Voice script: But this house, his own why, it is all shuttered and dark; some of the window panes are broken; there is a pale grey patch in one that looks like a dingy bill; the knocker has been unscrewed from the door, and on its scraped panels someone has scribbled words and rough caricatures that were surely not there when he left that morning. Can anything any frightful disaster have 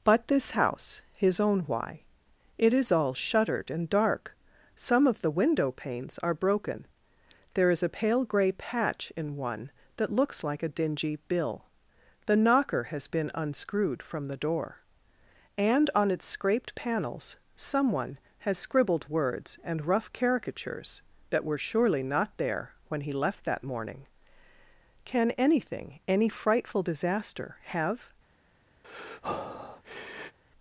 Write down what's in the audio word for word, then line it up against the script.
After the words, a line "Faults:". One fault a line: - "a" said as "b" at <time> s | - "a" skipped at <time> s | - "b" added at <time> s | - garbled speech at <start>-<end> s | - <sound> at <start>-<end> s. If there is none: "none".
But this house, his own why, it is all shuttered and dark; some of the window panes are broken; there is a pale grey patch in one that looks like a dingy bill; the knocker has been unscrewed from the door, and on its scraped panels someone has scribbled words and rough caricatures that were surely not there when he left that morning. Can anything any frightful disaster have
Faults:
- breath at 28.8-30.4 s